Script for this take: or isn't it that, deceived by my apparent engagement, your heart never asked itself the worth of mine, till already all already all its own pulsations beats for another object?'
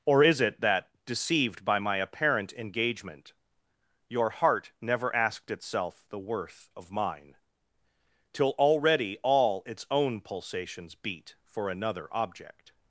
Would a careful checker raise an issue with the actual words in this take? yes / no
yes